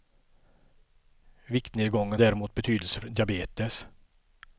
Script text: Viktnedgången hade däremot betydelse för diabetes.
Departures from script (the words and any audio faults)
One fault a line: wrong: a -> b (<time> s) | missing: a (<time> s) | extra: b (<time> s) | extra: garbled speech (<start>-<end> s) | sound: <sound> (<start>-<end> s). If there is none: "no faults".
missing: hade (2.2 s)
missing: för (3.0 s)